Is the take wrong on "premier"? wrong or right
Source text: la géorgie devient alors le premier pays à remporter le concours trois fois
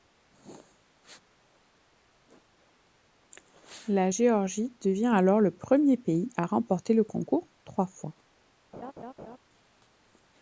right